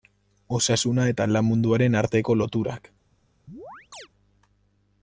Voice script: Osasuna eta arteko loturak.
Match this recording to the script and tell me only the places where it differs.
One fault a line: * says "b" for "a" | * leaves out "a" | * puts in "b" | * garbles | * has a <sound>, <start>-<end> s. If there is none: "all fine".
* puts in "lan munduaren"
* has a chirp, 3.5-4.1 s